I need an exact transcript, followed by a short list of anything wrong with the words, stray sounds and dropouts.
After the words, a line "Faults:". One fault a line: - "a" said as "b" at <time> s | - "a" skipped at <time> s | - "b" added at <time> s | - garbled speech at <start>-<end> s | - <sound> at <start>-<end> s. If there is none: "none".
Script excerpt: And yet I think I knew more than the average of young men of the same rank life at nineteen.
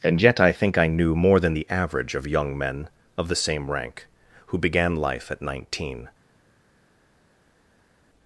And yet I think I knew more than the average of young men of the same rank who began life at nineteen.
Faults:
- "who began" added at 4.5 s